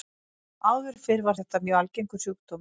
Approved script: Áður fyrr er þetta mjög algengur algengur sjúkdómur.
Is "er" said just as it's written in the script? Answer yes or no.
no